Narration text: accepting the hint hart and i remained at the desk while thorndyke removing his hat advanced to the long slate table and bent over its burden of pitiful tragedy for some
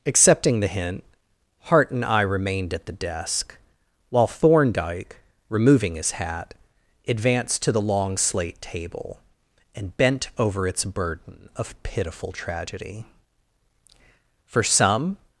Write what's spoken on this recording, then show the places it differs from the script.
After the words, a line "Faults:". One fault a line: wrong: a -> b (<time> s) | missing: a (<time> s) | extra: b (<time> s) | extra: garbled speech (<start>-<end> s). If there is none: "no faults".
accepting the hint hart and i remained at the desk while thorndyke removing his hat advanced to the long slate table and bent over its burden of pitiful tragedy for some
Faults:
no faults